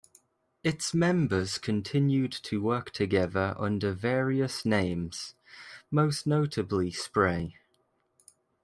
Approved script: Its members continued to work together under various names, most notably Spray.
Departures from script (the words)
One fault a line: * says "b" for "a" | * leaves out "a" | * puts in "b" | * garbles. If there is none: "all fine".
all fine